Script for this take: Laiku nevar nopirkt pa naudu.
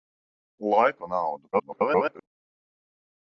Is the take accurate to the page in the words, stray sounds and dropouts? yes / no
no